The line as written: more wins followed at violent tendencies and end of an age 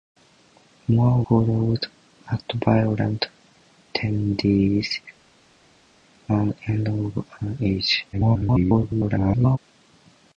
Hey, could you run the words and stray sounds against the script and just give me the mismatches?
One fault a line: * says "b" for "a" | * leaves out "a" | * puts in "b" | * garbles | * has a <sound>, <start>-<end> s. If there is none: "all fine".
* leaves out "wins"
* garbles